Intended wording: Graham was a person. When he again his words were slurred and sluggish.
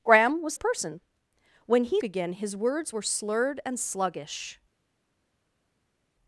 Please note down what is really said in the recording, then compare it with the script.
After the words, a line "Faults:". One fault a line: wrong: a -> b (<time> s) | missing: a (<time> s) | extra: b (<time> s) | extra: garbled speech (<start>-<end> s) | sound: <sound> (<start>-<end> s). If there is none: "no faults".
Graham was a person. When he again his words were slurred and sluggish.
Faults:
no faults